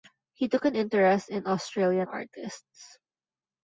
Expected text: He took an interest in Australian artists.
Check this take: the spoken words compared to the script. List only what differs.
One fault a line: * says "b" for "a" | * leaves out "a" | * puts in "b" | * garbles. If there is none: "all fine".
all fine